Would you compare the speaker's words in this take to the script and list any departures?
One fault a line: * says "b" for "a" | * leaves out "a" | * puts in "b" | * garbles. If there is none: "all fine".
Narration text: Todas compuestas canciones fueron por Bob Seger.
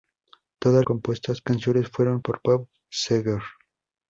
all fine